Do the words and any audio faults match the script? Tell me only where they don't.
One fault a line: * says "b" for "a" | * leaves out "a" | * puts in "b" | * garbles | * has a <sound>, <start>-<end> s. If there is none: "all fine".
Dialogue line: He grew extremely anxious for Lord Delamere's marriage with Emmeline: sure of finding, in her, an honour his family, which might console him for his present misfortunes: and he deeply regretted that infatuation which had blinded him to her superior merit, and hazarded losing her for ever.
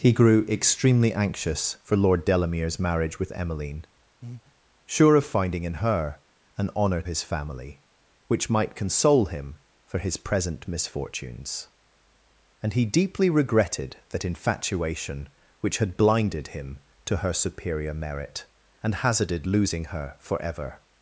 * has a breath, 4.2-4.5 s